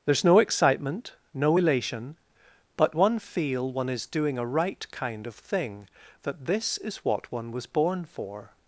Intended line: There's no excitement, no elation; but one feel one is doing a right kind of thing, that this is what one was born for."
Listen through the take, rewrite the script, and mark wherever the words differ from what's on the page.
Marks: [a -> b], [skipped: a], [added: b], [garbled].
There's no excitement, no elation; but one feel one is doing a right kind of thing, that this is what one was born for."